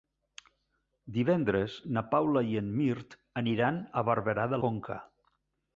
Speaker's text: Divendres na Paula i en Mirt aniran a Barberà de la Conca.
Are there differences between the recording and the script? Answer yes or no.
yes